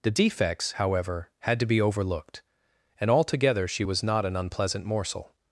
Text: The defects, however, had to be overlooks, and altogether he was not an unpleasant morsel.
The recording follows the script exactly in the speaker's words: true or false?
false